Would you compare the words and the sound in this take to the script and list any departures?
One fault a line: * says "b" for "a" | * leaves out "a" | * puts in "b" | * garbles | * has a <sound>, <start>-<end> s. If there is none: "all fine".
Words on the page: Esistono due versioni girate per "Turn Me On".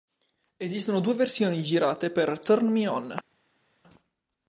all fine